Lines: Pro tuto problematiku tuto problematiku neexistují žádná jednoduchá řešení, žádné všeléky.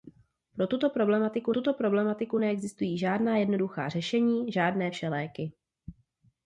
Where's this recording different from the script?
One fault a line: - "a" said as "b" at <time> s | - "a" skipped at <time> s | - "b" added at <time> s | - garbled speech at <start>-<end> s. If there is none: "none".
none